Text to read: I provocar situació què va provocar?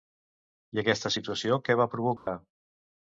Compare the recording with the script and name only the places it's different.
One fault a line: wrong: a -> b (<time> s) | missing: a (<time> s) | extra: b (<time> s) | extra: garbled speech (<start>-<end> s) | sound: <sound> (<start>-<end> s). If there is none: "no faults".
wrong: provocar -> aquesta (0.8 s)
sound: dropout (2.2-2.3 s)